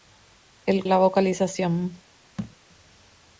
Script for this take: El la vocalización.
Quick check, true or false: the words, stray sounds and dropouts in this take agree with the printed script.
false